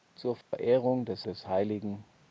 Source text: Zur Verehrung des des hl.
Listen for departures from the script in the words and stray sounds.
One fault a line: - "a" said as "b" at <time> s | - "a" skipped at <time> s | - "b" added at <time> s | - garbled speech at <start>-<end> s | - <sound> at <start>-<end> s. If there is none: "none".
- dropout at 0.4-0.5 s